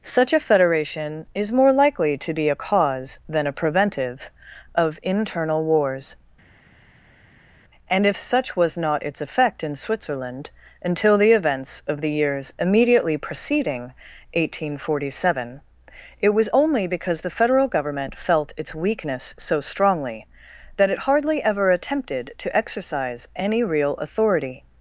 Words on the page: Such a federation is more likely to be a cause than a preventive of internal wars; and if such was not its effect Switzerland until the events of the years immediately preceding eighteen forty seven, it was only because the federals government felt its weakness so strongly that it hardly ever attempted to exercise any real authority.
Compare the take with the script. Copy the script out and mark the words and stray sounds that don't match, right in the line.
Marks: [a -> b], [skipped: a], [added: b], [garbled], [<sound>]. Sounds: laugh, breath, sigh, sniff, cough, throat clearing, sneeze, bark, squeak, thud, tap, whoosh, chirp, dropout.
Such a federation is more likely to be a cause than a preventive of internal wars; and if such was not its effect [added: in] Switzerland until the events of the years immediately preceding eighteen forty seven, it was only because the [federals -> federal] government felt its weakness so strongly that it hardly ever attempted to exercise any real authority.